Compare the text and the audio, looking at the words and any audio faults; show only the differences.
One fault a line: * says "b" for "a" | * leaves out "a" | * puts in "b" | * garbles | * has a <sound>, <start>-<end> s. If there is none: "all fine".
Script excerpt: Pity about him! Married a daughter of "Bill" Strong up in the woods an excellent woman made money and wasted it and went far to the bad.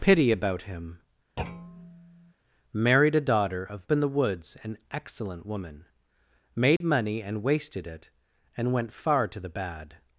* has a thud, 1.4-2.3 s
* leaves out "Bill Strong up"
* has a dropout, 6.8-6.8 s